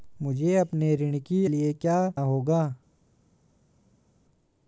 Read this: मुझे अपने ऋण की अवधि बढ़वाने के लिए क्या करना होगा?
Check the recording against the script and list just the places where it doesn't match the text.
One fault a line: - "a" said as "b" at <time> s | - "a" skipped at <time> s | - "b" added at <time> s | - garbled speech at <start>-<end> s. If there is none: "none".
- "अवधि बढ़वाने के" skipped at 1.5 s
- "करना" skipped at 2.1 s